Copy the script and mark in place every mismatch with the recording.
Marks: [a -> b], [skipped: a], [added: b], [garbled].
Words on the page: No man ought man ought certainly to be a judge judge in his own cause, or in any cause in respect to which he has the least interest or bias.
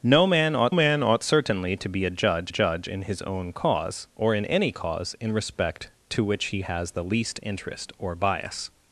No man ought man ought certainly to be a judge judge in his own cause, or in any cause in respect to which he has the least interest or bias.